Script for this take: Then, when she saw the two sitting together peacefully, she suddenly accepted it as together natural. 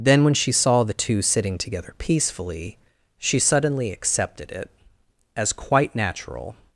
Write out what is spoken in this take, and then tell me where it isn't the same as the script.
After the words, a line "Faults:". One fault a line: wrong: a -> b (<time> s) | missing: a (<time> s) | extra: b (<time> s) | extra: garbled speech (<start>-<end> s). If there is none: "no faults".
Then, when she saw the two sitting together peacefully, she suddenly accepted it as quite natural.
Faults:
wrong: together -> quite (5.5 s)